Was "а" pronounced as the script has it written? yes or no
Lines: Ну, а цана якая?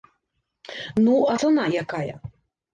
yes